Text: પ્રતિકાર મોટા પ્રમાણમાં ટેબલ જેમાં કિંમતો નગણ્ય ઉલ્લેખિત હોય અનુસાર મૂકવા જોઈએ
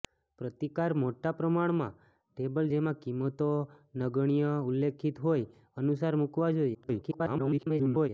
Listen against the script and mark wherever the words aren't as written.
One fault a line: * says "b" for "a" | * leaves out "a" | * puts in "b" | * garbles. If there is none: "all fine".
* garbles